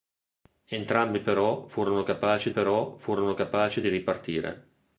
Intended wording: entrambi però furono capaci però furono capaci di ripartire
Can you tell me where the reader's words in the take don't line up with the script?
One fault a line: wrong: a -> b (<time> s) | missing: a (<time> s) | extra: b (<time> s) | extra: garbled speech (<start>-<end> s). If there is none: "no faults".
no faults